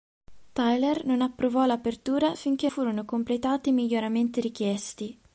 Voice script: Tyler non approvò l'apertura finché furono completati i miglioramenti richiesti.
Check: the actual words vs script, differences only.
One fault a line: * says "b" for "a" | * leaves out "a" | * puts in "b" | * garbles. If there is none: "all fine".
all fine